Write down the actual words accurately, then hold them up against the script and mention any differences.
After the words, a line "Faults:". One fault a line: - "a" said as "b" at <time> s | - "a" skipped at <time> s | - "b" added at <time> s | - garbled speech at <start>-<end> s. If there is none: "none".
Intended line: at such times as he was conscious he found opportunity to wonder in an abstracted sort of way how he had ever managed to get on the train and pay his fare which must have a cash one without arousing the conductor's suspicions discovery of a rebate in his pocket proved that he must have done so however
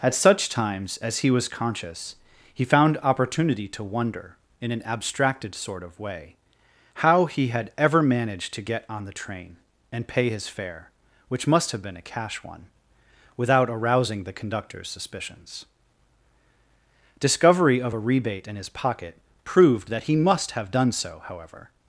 at such times as he was conscious he found opportunity to wonder in an abstracted sort of way how he had ever managed to get on the train and pay his fare which must have been a cash one without arousing the conductor's suspicions discovery of a rebate in his pocket proved that he must have done so however
Faults:
- "been" added at 11.8 s